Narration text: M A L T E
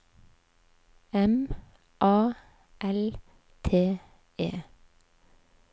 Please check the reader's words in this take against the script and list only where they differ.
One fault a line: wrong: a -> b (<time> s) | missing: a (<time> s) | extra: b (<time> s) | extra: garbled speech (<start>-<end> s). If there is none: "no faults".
no faults